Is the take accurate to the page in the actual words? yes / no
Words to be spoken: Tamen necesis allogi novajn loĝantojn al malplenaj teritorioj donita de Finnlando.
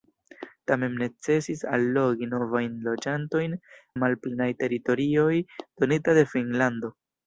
no